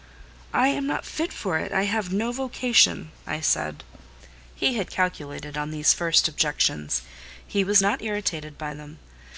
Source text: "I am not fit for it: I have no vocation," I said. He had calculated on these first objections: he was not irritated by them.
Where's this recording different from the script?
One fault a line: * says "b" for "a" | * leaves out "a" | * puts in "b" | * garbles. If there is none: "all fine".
all fine